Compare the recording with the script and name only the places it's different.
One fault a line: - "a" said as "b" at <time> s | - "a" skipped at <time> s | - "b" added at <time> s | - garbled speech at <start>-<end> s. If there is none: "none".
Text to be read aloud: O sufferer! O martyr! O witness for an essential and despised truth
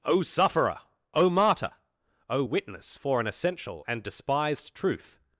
none